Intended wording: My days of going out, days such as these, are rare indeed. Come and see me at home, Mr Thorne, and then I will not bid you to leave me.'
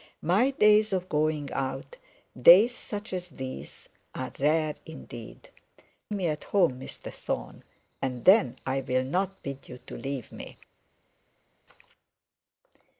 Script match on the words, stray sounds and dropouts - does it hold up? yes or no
no